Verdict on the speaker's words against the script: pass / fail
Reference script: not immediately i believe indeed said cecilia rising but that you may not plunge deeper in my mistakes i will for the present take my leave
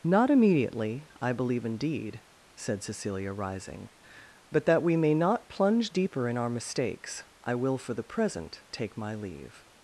fail